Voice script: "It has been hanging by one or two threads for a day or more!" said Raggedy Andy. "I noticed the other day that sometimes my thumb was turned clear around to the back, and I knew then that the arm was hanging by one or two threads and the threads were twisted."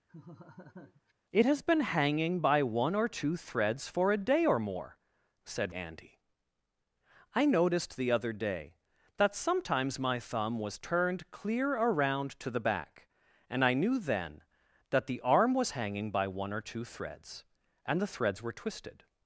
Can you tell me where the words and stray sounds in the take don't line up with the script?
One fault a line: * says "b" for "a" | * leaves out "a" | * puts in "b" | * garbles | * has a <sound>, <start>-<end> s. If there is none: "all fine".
* has a laugh, 0.1-1.1 s
* leaves out "Raggedy"